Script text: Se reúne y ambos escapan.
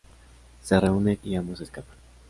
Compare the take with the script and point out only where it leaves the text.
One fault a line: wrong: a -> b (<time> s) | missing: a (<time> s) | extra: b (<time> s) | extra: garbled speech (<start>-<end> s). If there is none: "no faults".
no faults